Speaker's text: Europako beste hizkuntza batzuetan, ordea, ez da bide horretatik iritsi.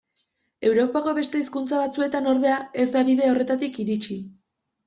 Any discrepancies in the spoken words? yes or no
no